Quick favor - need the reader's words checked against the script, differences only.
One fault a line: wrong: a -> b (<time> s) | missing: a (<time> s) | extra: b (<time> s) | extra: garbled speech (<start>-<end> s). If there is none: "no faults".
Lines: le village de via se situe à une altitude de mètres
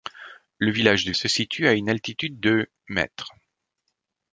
missing: via (1.1 s)